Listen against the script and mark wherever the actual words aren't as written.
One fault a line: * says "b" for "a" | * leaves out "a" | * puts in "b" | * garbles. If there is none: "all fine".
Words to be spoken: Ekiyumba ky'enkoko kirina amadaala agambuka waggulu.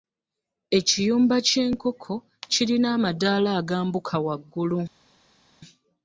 all fine